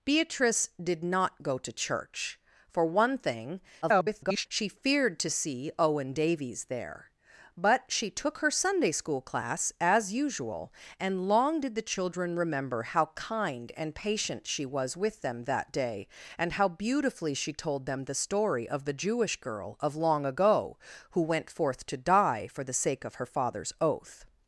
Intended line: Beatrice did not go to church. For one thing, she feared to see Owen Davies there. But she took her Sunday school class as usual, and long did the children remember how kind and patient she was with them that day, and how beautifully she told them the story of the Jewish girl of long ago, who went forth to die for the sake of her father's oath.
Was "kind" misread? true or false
false